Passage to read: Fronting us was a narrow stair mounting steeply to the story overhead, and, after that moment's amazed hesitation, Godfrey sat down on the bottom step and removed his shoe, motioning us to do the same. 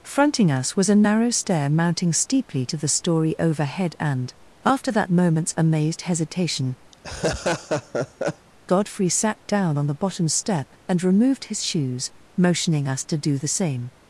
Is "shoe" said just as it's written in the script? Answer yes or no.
no